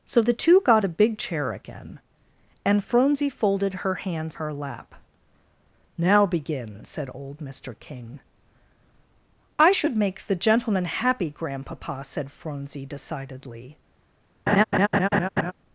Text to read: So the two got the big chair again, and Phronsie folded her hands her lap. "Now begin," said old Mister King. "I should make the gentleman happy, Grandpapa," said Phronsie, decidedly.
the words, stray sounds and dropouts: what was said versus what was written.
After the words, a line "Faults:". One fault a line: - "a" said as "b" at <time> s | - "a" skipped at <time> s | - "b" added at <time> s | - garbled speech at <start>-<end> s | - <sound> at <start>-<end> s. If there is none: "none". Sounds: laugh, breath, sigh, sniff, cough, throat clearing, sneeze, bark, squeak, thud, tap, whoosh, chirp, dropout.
So the two got the big chair again, and Phronsie folded her hands her lap. "Now begin," said old Mister King. "I should make the gentleman happy, Grandpapa," said Phronsie, decidedly.
Faults:
- laugh at 14.5-15.5 s